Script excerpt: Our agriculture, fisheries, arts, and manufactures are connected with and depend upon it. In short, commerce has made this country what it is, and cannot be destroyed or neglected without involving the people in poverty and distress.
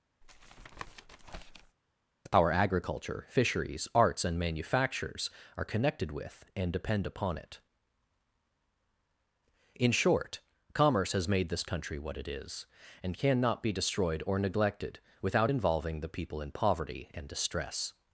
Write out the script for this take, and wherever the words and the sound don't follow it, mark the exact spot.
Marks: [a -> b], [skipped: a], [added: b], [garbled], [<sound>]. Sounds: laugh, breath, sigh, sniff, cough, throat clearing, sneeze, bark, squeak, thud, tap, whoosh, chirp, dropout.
[tap] Our agriculture, fisheries, arts, and manufactures are connected with and depend upon it. In short, commerce has made this country what it is, and cannot be destroyed or neglected without involving the people in poverty and distress.